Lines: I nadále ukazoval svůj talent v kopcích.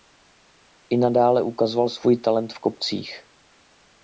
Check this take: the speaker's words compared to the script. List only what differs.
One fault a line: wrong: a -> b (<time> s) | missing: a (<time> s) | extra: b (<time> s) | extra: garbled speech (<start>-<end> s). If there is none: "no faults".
no faults